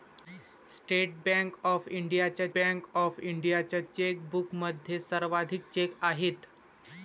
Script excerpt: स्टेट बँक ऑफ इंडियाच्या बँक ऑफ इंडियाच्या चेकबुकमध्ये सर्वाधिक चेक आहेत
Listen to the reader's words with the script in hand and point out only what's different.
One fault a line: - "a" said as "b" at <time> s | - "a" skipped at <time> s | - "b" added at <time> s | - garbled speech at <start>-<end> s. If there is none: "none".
none